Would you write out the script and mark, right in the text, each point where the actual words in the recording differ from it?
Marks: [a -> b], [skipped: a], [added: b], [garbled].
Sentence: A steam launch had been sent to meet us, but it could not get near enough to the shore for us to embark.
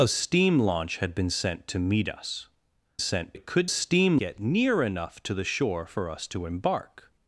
A steam launch had been sent to meet us, [but -> sent] it could [not -> steam] get near enough to the shore for us to embark.